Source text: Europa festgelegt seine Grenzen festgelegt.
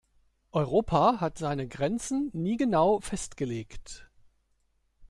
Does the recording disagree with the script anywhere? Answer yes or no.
yes